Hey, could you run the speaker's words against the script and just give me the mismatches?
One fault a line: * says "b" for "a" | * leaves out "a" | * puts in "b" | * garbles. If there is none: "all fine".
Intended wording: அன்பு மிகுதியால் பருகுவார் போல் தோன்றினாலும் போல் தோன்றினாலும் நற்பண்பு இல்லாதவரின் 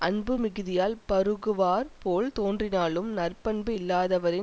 * leaves out "போல் தோன்றினாலும்"